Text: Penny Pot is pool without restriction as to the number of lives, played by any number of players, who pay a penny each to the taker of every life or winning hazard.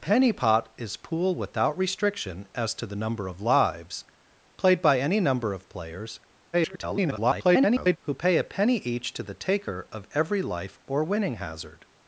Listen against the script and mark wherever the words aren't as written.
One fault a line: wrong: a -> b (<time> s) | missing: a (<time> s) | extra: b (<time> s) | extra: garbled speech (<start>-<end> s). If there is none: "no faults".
extra: garbled speech (6.5-8.0 s)